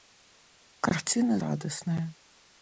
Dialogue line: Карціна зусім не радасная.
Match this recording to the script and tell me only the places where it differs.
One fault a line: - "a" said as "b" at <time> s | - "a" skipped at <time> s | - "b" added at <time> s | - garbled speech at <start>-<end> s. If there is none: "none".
- "зусім не" skipped at 1.4 s